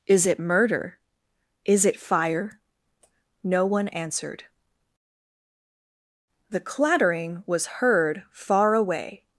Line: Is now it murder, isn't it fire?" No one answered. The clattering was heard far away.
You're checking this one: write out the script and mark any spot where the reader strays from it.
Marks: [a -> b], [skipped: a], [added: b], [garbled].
Is [skipped: now] it murder, [isn't -> is] it fire?" No one answered. The clattering was heard far away.